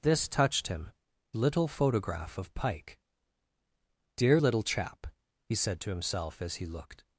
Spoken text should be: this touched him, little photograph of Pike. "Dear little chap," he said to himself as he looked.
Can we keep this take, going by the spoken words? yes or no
yes